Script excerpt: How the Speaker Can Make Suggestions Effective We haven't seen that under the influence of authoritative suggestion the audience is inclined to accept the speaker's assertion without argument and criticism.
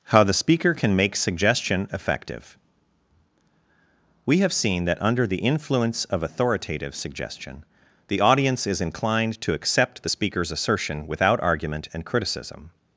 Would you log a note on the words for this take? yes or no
yes